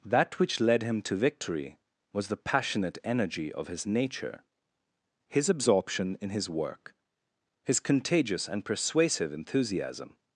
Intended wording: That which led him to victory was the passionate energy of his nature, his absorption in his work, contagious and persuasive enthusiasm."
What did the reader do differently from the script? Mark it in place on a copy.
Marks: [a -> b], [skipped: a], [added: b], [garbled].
That which led him to victory was the passionate energy of his nature, his absorption in his work, [added: his] contagious and persuasive enthusiasm."